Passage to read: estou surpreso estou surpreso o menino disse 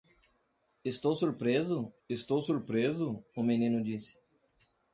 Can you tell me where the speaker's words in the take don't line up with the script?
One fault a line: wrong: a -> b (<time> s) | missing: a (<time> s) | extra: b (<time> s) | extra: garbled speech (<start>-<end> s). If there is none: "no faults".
no faults